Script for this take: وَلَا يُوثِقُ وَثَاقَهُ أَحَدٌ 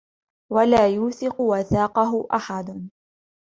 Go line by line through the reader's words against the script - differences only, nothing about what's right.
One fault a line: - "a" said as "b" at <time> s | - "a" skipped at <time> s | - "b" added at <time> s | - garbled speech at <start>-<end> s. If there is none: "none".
none